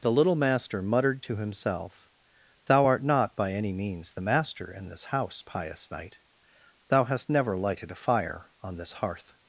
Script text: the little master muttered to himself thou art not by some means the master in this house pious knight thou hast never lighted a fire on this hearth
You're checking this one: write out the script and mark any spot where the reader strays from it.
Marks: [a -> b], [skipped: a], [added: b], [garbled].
the little master muttered to himself thou art not by [some -> any] means the master in this house pious knight thou hast never lighted a fire on this hearth